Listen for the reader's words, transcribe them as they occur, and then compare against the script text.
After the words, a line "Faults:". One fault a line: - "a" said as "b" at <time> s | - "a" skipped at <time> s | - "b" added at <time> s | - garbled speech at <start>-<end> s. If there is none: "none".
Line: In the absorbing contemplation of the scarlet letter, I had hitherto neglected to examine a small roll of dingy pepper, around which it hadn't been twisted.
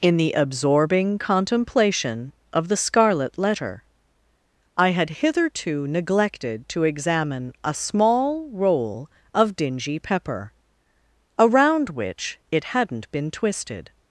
In the absorbing contemplation of the scarlet letter, I had hitherto neglected to examine a small roll of dingy pepper, around which it hadn't been twisted.
Faults:
none